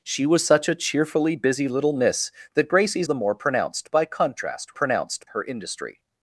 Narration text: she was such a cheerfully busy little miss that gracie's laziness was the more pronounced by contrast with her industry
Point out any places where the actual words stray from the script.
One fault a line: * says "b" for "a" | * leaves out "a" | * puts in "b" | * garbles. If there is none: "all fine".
* leaves out "laziness was"
* says "pronounced" for "with"